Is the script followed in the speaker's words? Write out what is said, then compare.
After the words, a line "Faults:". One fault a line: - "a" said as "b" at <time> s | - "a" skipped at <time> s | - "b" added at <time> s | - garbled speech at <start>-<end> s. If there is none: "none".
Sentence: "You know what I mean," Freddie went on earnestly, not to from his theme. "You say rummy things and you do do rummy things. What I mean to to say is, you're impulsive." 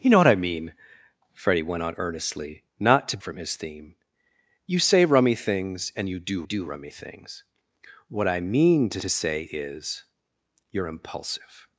"You know what I mean," Freddie went on earnestly, not to from his theme. "You say rummy things and you do do rummy things. What I mean to to say is, you're impulsive."
Faults:
none